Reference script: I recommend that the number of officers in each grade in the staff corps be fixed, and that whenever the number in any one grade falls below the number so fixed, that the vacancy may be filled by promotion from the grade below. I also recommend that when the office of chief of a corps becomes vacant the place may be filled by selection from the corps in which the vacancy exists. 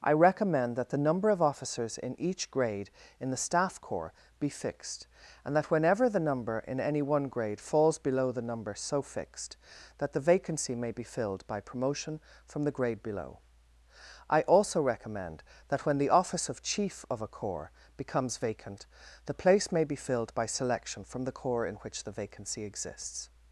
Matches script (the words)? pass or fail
pass